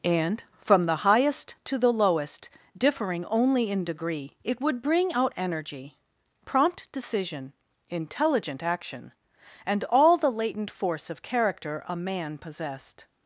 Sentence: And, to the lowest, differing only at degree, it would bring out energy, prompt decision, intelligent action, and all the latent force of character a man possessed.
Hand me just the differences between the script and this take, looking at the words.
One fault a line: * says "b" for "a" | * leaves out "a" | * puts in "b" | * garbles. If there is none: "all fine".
* puts in "from the highest"
* says "in" for "at"